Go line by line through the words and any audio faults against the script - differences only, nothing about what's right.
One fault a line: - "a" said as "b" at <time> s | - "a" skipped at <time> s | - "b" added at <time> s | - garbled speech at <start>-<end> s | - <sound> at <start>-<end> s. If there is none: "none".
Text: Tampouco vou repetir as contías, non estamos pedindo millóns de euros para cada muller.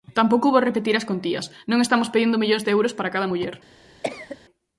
- cough at 4.0-4.4 s